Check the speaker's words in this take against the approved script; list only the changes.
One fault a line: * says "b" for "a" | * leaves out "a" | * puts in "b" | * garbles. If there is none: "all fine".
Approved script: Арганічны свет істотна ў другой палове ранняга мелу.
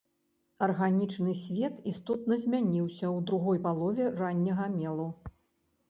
* puts in "змяніўся"